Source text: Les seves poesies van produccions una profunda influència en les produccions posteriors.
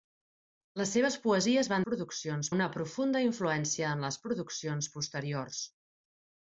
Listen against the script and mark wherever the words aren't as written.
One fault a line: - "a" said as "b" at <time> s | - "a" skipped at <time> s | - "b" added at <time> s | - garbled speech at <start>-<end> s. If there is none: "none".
none